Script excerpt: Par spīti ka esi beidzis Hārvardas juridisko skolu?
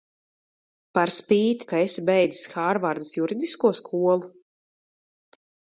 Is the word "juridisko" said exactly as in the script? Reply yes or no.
yes